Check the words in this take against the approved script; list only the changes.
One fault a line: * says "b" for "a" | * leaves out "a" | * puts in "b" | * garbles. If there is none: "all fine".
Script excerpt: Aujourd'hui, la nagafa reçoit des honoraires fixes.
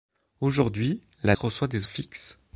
* leaves out "nagafa"
* leaves out "honoraires"